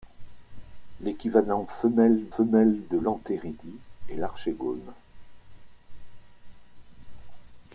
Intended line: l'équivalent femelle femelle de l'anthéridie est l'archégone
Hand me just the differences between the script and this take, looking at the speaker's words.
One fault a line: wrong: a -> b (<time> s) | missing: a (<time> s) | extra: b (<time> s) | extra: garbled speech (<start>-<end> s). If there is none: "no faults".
no faults